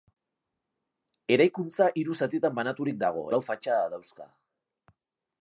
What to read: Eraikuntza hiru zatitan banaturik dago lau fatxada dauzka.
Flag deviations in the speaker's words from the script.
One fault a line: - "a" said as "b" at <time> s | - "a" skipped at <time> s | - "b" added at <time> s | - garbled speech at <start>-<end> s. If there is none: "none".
none